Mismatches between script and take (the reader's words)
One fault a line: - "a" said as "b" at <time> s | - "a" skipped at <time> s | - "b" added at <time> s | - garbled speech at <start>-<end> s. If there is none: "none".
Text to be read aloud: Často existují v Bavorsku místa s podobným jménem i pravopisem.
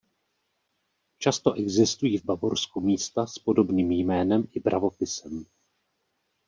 none